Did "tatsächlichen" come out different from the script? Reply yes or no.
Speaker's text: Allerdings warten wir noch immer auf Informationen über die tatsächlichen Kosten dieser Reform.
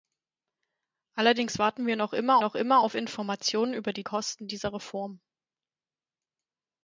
yes